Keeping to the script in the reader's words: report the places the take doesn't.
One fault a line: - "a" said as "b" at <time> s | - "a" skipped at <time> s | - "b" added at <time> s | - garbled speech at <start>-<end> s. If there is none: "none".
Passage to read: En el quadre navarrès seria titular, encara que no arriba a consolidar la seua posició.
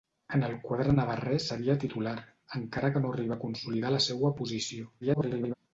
- garbled speech at 5.0-5.5 s